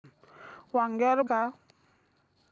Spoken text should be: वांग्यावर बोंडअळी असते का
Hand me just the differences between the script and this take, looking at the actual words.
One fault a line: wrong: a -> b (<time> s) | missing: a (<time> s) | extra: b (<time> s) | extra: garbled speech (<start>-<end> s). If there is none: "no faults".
missing: बोंडअळी असते (1.2 s)